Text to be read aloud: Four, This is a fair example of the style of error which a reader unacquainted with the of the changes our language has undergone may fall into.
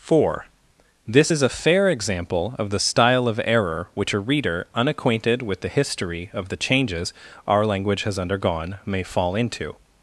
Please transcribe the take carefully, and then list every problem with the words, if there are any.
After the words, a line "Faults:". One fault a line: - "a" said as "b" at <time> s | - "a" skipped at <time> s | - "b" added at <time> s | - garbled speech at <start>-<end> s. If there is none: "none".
Four, This is a fair example of the style of error which a reader unacquainted with the history of the changes our language has undergone may fall into.
Faults:
- "history" added at 5.7 s